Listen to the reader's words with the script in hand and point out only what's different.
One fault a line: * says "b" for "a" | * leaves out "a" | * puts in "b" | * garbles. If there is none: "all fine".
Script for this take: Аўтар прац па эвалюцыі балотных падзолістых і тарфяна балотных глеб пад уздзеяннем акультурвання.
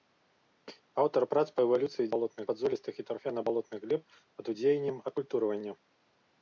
all fine